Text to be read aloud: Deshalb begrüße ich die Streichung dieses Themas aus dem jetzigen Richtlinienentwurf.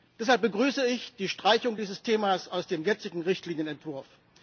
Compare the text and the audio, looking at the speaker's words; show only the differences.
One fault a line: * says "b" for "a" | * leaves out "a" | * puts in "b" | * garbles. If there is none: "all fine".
all fine